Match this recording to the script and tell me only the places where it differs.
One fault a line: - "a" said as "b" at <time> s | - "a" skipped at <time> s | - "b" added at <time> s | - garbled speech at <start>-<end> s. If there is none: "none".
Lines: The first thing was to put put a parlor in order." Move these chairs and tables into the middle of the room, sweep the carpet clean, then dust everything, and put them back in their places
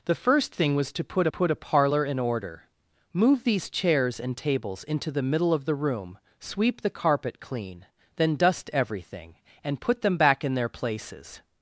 none